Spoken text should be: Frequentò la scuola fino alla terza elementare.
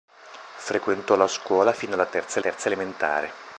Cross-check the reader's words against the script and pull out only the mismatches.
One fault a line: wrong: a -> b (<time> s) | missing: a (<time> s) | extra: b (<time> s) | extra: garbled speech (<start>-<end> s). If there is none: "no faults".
extra: terza (2.4 s)